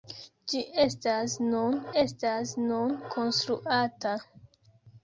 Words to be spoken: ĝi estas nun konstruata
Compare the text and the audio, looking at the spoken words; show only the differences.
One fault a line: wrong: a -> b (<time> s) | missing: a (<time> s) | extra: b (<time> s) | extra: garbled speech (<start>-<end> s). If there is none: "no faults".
extra: estas nun (2.0 s)